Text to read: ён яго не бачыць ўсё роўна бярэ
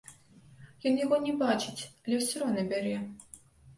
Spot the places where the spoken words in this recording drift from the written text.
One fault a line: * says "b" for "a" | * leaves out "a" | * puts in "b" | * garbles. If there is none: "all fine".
* puts in "але"